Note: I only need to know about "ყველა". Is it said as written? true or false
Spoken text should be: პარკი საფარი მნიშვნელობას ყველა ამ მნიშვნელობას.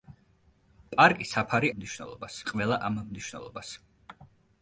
true